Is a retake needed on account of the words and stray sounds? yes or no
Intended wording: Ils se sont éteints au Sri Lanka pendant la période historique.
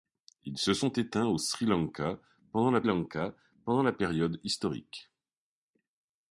yes